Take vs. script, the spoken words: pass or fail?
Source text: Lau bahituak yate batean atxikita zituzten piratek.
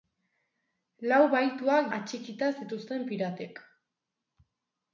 fail